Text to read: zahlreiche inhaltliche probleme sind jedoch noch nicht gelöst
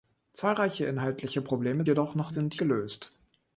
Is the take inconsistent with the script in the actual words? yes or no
yes